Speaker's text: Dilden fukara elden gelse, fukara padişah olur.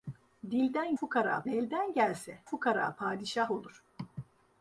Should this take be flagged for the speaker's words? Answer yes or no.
no